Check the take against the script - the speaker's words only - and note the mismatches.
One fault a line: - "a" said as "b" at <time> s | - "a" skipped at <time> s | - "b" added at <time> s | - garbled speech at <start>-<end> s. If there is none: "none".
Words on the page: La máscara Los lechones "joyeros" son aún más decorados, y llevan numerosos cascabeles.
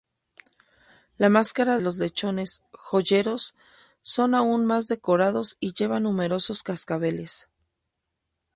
none